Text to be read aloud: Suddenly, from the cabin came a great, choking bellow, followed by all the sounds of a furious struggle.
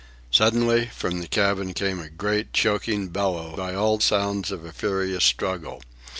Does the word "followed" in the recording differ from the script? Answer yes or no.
yes